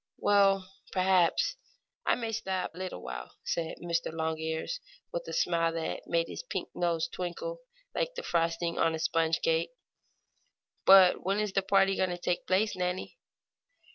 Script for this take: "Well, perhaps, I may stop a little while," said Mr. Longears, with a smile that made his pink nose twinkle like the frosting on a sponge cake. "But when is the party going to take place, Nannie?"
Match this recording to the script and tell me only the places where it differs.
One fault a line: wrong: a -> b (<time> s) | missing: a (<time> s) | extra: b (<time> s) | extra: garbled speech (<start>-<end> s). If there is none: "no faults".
no faults